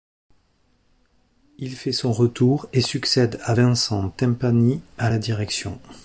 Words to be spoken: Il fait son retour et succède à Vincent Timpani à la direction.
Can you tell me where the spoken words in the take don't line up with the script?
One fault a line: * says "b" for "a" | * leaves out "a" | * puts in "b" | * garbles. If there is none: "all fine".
all fine